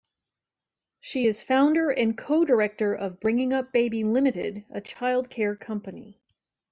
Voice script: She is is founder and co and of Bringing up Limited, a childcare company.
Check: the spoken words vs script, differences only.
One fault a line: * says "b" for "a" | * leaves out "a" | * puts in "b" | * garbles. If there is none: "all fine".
* leaves out "is"
* says "director" for "and"
* puts in "Baby"